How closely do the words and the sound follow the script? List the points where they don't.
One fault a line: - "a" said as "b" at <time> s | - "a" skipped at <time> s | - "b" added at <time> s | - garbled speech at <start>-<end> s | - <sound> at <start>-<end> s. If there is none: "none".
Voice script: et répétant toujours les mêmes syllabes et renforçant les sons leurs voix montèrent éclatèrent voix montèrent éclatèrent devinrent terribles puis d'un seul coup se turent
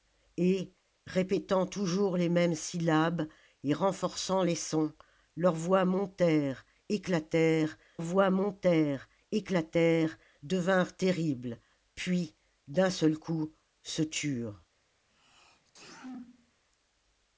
- sneeze at 15.1-16.6 s